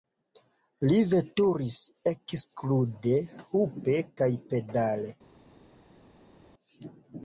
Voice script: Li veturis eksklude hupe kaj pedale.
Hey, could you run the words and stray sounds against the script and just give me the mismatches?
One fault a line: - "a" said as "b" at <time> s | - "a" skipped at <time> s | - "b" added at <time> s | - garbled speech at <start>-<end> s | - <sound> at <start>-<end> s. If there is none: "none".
none